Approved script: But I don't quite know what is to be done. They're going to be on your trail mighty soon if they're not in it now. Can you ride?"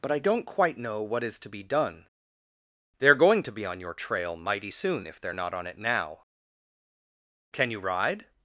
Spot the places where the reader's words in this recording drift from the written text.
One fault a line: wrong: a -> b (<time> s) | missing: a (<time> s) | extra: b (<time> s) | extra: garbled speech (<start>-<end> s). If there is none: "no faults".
wrong: in -> on (5.5 s)